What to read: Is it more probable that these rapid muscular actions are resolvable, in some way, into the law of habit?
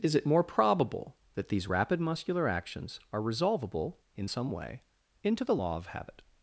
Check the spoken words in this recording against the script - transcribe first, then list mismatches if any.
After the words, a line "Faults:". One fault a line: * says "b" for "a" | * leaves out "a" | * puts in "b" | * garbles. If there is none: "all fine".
Is it more probable that these rapid muscular actions are resolvable, in some way, into the law of habit?
Faults:
all fine